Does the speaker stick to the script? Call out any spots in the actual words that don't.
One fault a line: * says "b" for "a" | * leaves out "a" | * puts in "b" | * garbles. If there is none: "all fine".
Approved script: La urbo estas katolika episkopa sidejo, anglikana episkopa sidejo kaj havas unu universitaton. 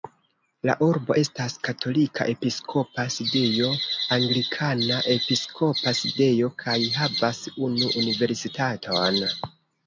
all fine